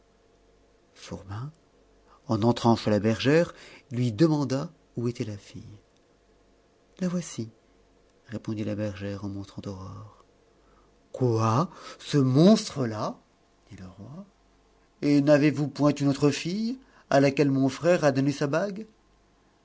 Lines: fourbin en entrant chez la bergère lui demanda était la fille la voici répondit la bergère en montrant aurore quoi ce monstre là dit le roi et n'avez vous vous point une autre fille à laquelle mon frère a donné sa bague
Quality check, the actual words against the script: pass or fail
fail